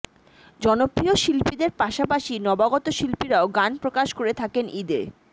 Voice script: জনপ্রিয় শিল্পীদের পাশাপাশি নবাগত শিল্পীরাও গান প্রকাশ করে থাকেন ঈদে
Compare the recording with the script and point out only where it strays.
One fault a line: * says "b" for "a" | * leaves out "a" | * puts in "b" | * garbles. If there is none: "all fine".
all fine